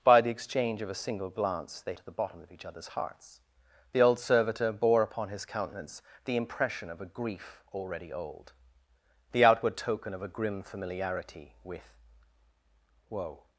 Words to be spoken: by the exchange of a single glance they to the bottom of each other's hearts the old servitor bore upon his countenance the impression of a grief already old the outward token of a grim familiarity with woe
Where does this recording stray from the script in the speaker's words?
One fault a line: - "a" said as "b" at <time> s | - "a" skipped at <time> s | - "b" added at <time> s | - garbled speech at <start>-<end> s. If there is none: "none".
none